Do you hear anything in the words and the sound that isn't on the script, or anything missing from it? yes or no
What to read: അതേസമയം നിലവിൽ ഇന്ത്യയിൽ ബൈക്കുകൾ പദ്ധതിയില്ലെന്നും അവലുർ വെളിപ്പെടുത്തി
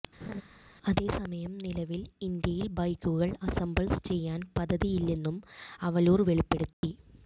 yes